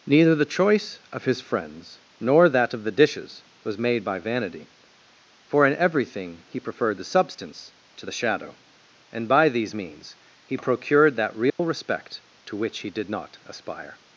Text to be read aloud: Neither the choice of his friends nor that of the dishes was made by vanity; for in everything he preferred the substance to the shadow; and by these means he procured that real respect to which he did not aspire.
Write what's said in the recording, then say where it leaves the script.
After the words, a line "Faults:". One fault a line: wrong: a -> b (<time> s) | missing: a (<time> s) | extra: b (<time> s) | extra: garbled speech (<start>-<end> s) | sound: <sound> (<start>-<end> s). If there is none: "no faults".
Neither the choice of his friends nor that of the dishes was made by vanity; for in everything he preferred the substance to the shadow; and by these means he procured that real respect to which he did not aspire.
Faults:
sound: dropout (11.5-11.6 s)